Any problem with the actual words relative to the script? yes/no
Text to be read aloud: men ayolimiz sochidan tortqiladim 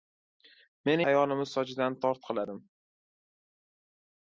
no